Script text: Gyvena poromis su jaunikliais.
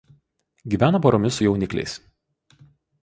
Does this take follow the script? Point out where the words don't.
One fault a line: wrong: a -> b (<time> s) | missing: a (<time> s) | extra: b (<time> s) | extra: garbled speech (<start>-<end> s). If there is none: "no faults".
no faults